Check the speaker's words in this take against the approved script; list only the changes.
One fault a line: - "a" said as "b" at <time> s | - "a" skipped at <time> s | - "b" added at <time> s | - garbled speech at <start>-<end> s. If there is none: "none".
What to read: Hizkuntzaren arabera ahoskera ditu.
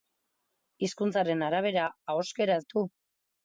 none